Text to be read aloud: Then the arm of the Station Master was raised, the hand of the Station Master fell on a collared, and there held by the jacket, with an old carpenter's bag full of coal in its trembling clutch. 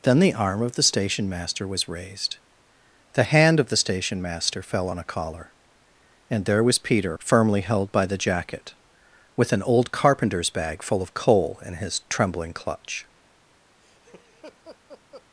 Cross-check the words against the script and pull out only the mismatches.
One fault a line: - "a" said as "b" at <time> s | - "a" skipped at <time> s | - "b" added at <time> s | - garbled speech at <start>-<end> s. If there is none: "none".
- "collared" said as "collar" at 5.0 s
- "was Peter firmly" added at 6.6 s
- "its" said as "his" at 11.7 s